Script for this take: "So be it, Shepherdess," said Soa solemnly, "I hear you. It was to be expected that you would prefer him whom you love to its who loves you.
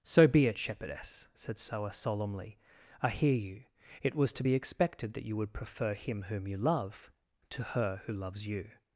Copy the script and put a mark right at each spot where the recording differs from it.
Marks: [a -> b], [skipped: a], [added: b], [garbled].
"So be it, Shepherdess," said Soa solemnly, "I hear you. It was to be expected that you would prefer him whom you love to [its -> her] who loves you.